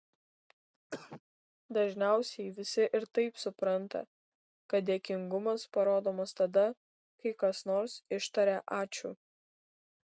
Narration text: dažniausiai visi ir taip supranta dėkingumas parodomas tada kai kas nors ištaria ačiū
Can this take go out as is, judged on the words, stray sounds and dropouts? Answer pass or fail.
fail